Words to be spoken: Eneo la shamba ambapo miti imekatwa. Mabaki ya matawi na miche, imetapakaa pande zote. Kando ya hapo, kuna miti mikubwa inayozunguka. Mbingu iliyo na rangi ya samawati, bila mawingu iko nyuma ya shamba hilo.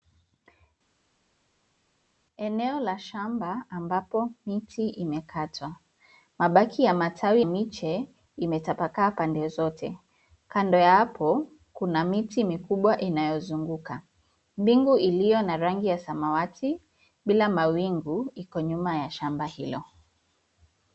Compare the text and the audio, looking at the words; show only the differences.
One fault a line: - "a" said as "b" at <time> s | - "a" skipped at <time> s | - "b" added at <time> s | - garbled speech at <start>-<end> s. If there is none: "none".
- "na" skipped at 7.4 s